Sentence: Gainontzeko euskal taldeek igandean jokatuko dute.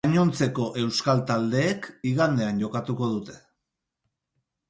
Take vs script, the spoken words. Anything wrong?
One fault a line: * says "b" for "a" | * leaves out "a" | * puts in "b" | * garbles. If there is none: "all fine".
all fine